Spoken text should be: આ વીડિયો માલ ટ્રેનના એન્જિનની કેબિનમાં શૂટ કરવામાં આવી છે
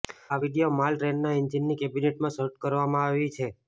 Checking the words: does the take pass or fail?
pass